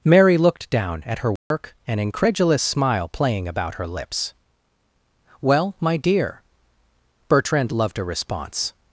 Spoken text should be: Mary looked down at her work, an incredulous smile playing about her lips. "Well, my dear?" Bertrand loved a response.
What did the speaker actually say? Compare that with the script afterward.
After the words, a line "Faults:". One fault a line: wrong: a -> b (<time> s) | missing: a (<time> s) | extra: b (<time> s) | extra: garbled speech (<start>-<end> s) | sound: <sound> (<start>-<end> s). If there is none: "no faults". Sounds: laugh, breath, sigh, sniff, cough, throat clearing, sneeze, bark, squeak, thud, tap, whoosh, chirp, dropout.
Mary looked down at her work, an incredulous smile playing about her lips. "Well, my dear?" Bertrand loved a response.
Faults:
sound: dropout (1.4-1.5 s)